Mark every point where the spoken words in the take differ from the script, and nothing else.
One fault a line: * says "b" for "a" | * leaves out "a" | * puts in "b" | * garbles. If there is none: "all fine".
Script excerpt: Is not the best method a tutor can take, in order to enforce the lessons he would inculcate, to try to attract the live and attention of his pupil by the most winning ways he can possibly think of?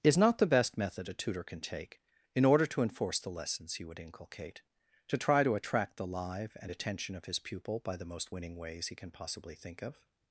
all fine